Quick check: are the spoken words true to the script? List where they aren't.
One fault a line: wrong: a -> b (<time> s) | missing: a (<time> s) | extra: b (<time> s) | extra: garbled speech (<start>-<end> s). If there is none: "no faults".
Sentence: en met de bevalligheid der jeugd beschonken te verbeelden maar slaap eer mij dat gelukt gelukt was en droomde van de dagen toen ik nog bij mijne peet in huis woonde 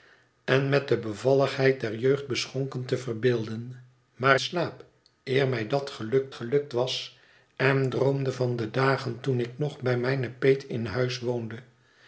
no faults